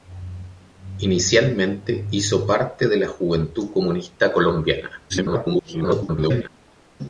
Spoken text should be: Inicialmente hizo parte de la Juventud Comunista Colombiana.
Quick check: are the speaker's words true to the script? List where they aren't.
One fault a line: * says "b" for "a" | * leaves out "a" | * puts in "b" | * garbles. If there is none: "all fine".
* garbles